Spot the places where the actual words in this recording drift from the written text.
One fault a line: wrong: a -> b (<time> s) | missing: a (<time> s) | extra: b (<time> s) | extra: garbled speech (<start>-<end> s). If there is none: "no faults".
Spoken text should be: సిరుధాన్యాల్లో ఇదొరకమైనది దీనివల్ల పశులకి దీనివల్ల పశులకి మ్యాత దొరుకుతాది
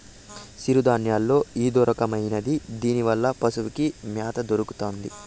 missing: దీనివల్ల పశులకి (3.9 s)